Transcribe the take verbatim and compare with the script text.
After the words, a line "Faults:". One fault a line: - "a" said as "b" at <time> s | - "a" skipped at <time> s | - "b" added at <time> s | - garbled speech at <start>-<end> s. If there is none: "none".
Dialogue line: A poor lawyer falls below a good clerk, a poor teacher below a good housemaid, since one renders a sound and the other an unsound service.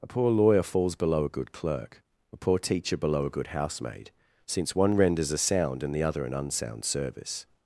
A poor lawyer falls below a good clerk, a poor teacher below a good housemaid, since one renders a sound and the other an unsound service.
Faults:
none